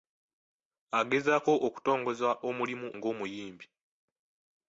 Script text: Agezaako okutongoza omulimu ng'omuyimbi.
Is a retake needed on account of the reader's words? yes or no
no